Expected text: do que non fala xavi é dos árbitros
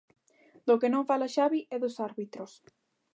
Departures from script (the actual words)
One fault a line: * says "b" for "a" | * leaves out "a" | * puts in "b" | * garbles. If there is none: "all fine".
all fine